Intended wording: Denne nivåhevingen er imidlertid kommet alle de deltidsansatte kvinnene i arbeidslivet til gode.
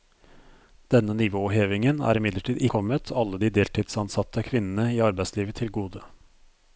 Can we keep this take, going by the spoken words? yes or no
yes